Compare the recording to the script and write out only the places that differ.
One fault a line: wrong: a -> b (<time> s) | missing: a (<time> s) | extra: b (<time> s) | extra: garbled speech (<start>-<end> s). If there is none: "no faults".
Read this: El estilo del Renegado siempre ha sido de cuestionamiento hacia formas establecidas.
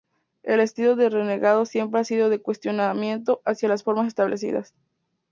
extra: las (3.7 s)